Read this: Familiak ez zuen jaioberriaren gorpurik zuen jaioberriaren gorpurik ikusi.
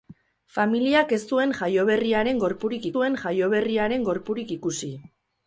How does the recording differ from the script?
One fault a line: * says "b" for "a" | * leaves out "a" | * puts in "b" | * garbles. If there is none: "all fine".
all fine